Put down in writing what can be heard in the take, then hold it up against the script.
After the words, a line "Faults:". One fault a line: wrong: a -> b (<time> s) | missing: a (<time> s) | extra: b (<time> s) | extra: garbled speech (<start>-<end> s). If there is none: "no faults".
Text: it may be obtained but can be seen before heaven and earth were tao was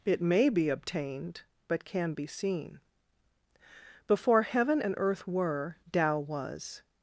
it may be obtained but can be seen before heaven and earth were tao was
Faults:
no faults